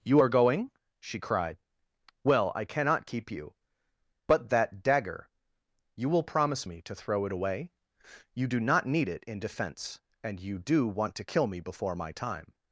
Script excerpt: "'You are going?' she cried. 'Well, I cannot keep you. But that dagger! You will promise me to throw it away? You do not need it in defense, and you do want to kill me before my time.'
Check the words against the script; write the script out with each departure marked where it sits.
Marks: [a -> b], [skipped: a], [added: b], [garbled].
"'You are going?' she cried. 'Well, I cannot keep you. But that dagger! You will promise me to throw it away? You do not need it in defense, and you do want to kill me before my time.'